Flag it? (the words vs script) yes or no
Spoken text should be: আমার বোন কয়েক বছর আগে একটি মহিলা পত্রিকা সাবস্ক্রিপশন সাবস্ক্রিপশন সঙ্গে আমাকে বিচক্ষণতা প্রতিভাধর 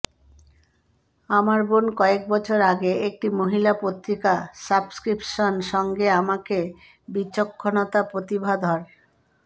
yes